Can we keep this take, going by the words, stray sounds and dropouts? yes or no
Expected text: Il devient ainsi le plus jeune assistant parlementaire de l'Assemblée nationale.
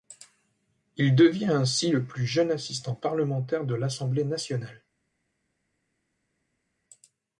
yes